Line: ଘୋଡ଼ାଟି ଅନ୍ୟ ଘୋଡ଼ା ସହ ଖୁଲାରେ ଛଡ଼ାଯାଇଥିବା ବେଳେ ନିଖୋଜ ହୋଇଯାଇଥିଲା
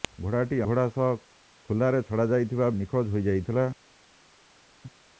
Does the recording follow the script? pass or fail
fail